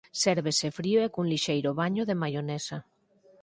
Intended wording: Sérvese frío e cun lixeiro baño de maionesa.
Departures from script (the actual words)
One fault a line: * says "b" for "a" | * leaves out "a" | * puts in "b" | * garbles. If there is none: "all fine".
all fine